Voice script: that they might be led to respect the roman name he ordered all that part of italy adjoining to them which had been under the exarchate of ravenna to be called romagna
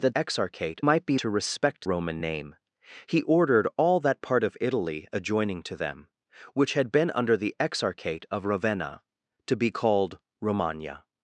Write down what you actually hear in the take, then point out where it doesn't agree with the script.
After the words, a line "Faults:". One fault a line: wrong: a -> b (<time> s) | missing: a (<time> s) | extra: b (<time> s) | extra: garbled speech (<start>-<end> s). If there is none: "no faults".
that exarchate might be to respect roman name he ordered all that part of italy adjoining to them which had been under the exarchate of ravenna to be called romagna
Faults:
wrong: they -> exarchate (0.1 s)
missing: led (1.2 s)
missing: the (1.9 s)